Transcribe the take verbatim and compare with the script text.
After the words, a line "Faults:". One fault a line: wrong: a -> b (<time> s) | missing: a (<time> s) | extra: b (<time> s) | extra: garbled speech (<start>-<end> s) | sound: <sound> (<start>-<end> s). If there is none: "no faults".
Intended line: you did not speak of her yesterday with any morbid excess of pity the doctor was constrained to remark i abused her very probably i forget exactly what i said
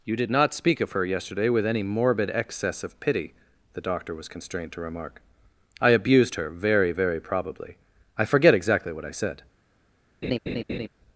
you did not speak of her yesterday with any morbid excess of pity the doctor was constrained to remark i abused her very very probably i forget exactly what i said
Faults:
extra: very (6.9 s)
sound: laugh (10.2-10.9 s)